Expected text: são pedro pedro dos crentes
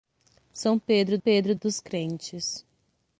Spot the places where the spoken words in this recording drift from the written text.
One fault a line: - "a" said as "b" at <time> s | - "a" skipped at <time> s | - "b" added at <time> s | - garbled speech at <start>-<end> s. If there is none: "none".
none